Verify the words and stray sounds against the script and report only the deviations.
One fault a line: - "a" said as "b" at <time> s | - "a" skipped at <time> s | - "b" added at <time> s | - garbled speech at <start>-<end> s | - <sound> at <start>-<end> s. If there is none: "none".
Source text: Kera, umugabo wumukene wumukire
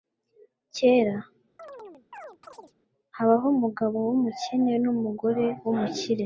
- chirp at 1.6-2.7 s
- "habaho" added at 3.2 s
- "numugore" added at 4.8 s